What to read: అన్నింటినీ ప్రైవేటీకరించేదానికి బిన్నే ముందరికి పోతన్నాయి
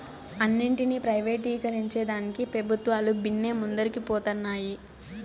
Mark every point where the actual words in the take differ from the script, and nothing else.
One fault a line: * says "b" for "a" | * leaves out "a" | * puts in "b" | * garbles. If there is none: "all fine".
* puts in "పెబుత్వాలు"